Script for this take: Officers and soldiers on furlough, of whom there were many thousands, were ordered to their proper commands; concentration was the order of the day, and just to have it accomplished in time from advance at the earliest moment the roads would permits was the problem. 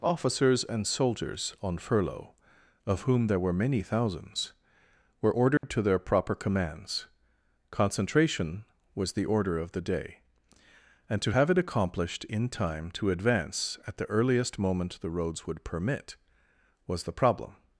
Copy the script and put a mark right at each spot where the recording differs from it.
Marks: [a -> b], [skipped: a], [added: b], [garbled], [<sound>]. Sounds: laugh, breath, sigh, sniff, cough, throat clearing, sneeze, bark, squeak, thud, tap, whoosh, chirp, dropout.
Officers and soldiers on furlough, of whom there were many thousands, were ordered [dropout] to their proper commands; concentration was the order of the day, and [skipped: just] to have it accomplished in time [from -> to] advance at the earliest moment the roads would [permits -> permit] was the problem.